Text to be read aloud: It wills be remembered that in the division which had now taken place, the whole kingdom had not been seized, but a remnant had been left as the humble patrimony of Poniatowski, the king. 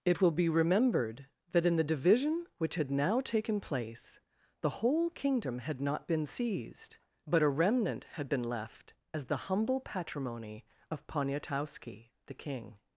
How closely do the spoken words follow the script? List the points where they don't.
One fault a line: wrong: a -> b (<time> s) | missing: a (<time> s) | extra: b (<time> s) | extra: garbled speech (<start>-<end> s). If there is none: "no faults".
wrong: wills -> will (0.2 s)